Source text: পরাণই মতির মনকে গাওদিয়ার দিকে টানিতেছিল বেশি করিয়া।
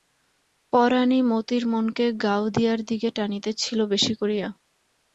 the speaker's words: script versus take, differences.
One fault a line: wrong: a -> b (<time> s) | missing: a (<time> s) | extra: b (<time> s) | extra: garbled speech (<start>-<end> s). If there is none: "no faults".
no faults